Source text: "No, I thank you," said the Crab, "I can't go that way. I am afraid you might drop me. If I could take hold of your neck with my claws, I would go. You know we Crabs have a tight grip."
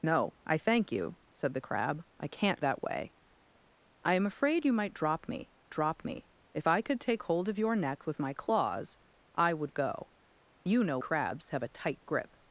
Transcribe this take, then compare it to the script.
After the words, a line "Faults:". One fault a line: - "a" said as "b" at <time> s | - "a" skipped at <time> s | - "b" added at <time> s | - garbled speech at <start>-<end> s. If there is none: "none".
"No, I thank you," said the Crab, "I can't that way. I am afraid you might drop me drop me. If I could take hold of your neck with my claws, I would go. You know Crabs have a tight grip."
Faults:
- "go" skipped at 2.6 s
- "drop me" added at 5.7 s
- "we" skipped at 11.0 s